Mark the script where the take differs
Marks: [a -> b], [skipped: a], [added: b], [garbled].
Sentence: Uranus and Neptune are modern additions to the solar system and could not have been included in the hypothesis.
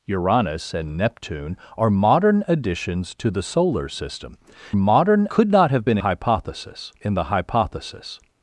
Uranus and Neptune are modern additions to the solar system [and -> modern] could not have been [included -> hypothesis] in the hypothesis.